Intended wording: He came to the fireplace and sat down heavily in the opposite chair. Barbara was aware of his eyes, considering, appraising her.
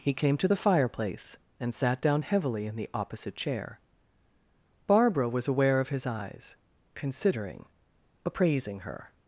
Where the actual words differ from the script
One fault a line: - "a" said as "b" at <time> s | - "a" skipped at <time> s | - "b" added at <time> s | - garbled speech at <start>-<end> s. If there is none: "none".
none